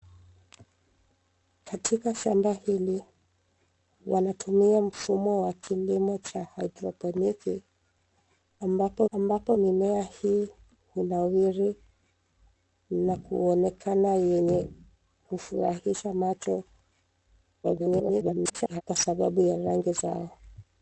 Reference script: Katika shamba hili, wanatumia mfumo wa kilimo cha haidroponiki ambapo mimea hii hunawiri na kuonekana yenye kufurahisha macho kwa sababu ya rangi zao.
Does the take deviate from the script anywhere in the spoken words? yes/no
yes